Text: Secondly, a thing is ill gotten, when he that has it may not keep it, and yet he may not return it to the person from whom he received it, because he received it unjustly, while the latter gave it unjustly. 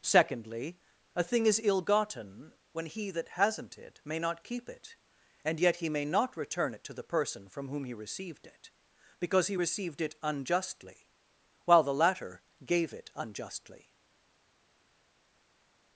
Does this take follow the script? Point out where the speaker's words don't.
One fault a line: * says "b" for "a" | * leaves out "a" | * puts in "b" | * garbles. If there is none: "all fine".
* says "hasn't" for "has"